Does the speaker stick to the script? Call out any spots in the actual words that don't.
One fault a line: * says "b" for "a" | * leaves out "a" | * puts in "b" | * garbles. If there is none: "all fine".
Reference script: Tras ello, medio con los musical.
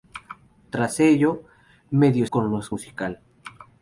all fine